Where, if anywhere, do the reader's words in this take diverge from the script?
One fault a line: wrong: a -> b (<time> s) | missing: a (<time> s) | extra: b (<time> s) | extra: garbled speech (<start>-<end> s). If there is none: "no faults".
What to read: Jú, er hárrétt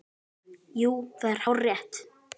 extra: það (1.2 s)